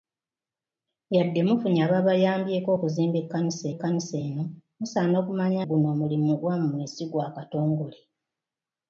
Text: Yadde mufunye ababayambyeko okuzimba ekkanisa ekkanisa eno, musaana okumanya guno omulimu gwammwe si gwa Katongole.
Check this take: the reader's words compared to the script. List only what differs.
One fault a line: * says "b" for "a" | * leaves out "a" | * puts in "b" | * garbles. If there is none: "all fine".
all fine